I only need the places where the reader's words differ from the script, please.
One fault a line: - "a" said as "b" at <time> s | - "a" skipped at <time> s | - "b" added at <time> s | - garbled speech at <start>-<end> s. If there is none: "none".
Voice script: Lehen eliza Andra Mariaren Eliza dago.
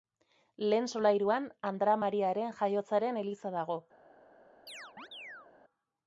- "eliza" said as "solairuan" at 0.9 s
- "Jaiotzaren" added at 2.6 s